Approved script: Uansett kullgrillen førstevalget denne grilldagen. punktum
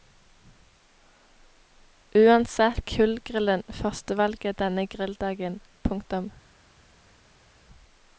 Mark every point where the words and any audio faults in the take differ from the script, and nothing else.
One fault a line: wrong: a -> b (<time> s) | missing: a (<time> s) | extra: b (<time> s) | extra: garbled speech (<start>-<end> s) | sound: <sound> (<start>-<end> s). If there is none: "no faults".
no faults